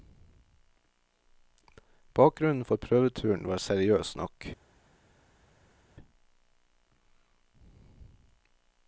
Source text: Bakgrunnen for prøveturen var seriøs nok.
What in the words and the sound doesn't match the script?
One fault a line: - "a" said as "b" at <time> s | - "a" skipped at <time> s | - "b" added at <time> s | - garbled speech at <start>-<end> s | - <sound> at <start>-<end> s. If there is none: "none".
none